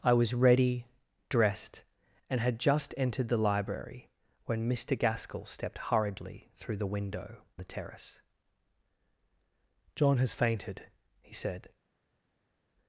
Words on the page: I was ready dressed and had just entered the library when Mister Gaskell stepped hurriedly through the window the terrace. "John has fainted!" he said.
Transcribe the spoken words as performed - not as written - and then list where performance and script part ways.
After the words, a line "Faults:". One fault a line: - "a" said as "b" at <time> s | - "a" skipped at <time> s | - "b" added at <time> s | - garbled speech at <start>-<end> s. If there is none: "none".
I was ready dressed and had just entered the library when Mister Gaskell stepped hurriedly through the window the terrace. "John has fainted!" he said.
Faults:
none